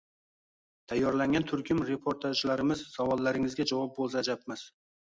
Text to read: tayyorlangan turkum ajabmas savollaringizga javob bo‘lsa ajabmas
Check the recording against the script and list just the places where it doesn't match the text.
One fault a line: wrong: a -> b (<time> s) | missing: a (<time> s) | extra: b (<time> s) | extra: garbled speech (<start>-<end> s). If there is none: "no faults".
wrong: ajabmas -> reportajlarimiz (1.9 s)